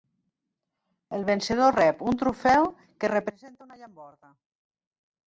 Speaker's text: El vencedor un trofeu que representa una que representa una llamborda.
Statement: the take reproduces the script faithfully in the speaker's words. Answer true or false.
false